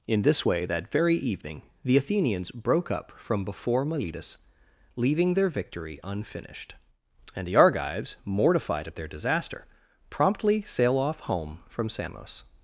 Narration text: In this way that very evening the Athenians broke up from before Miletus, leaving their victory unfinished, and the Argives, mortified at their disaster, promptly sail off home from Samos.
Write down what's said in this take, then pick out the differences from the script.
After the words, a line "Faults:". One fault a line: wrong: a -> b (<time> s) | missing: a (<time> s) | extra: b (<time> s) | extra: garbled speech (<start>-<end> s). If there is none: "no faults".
In this way that very evening the Athenians broke up from before Miletus, leaving their victory unfinished, and the Argives, mortified at their disaster, promptly sail off home from Samos.
Faults:
no faults